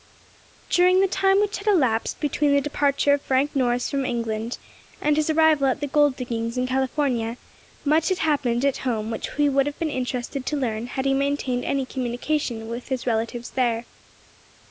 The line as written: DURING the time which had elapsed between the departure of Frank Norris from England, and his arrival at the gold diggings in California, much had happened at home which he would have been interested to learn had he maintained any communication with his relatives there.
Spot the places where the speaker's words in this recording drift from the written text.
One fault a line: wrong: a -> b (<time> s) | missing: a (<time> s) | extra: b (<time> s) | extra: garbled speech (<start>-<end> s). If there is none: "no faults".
no faults